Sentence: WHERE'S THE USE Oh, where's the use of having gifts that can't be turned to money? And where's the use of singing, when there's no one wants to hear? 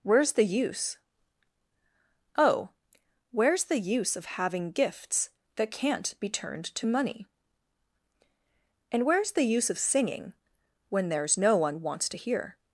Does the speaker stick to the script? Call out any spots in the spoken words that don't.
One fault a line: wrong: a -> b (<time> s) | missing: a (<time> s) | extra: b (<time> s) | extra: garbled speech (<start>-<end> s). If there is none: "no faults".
no faults